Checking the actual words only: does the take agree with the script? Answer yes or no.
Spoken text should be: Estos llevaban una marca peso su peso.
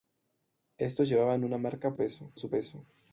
yes